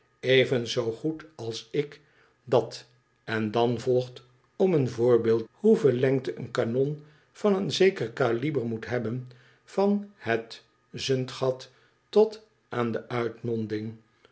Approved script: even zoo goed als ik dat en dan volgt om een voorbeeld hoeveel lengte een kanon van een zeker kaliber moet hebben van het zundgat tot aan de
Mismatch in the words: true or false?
false